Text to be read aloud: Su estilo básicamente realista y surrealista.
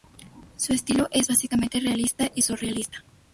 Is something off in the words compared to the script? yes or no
yes